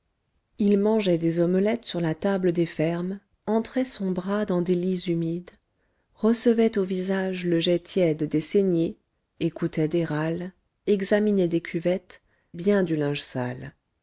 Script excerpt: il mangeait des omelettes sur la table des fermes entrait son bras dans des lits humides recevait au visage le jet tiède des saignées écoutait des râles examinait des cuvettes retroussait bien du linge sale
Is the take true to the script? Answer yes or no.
no